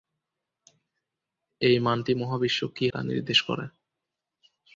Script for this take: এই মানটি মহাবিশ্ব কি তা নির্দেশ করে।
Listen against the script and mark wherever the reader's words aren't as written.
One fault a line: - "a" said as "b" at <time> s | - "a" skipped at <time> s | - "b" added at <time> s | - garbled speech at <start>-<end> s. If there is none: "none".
none